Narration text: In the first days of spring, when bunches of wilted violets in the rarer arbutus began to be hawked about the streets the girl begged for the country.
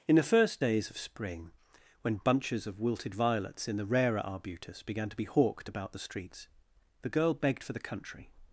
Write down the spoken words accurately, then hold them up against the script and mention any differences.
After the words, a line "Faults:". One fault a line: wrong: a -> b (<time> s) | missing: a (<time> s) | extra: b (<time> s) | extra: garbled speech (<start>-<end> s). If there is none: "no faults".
In the first days of spring, when bunches of wilted violets in the rarer arbutus began to be hawked about the streets the girl begged for the country.
Faults:
no faults